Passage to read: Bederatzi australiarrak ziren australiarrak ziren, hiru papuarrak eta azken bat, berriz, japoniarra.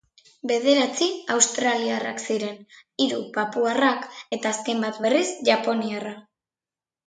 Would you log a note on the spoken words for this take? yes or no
yes